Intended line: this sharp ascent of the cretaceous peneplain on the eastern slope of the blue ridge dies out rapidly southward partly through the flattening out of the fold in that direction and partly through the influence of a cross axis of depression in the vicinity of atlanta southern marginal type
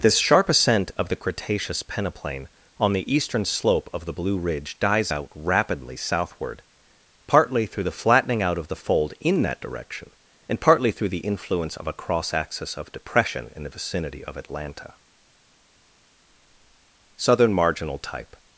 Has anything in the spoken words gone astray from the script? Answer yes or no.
no